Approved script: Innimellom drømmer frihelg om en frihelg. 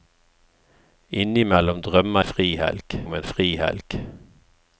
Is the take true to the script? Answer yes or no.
yes